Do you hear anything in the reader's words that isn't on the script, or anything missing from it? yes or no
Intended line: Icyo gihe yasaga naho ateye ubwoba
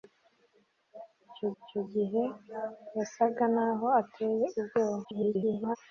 yes